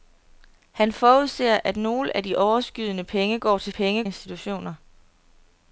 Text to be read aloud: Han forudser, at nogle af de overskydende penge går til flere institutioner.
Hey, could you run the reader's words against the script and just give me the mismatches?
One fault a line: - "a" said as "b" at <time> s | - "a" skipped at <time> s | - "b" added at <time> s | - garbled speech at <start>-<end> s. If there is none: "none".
- "flere" said as "penge" at 3.7 s